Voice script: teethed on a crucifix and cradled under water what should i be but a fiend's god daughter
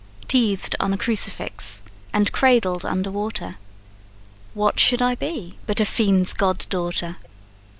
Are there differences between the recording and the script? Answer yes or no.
no